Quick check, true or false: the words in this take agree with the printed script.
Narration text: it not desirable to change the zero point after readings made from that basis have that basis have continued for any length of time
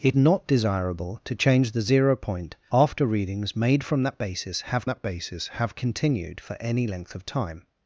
true